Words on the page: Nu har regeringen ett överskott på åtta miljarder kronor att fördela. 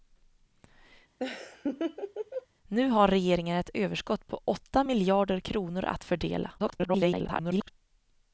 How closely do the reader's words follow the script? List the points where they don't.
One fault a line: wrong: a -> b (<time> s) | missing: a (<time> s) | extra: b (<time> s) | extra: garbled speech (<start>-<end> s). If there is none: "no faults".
extra: garbled speech (6.6-7.7 s)